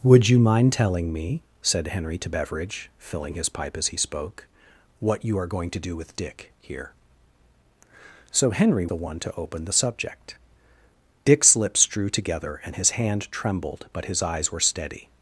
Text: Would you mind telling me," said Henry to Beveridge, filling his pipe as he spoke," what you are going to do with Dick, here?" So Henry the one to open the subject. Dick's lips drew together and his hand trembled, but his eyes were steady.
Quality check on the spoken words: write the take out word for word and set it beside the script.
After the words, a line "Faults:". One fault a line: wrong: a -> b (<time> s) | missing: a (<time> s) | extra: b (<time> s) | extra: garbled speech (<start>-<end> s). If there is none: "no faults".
Would you mind telling me," said Henry to Beveridge, filling his pipe as he spoke," what you are going to do with Dick, here?" So Henry the one to open the subject. Dick's lips drew together and his hand trembled, but his eyes were steady.
Faults:
no faults